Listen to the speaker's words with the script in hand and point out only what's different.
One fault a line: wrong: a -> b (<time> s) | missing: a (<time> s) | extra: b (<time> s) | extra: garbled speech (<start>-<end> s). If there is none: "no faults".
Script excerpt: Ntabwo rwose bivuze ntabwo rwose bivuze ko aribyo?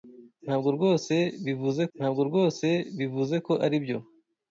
no faults